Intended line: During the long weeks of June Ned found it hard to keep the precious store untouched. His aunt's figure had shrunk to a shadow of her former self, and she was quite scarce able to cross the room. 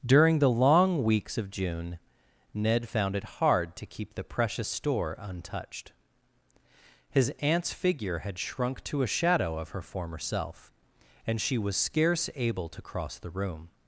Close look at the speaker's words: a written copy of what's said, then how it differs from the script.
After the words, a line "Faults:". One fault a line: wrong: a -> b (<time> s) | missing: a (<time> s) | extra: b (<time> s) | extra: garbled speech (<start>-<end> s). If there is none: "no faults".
During the long weeks of June Ned found it hard to keep the precious store untouched. His aunt's figure had shrunk to a shadow of her former self, and she was scarce able to cross the room.
Faults:
missing: quite (11.7 s)